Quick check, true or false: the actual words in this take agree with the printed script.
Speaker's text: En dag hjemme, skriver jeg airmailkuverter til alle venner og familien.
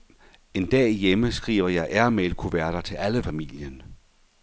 false